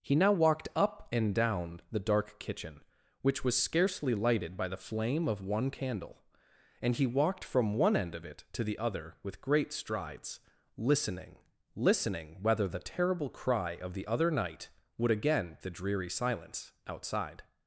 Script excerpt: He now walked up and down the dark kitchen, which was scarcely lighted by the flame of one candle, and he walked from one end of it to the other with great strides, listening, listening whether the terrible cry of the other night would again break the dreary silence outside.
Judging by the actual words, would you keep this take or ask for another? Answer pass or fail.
fail